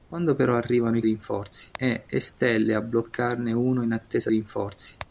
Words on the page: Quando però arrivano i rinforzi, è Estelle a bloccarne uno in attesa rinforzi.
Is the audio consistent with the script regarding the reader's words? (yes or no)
yes